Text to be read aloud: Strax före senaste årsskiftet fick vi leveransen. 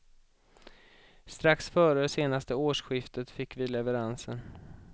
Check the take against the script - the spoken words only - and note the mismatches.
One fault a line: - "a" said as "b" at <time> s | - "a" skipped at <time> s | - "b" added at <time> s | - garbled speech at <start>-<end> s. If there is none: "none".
none